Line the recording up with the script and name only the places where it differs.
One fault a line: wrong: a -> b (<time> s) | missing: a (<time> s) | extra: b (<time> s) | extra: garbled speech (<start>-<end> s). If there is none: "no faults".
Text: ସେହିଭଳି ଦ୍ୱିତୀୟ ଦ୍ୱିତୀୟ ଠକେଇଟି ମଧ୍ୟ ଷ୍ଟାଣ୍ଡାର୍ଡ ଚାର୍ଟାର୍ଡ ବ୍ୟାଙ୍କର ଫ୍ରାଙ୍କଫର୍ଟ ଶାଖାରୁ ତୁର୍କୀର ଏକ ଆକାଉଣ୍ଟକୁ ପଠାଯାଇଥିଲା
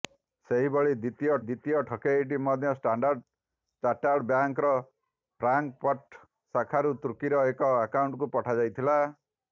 no faults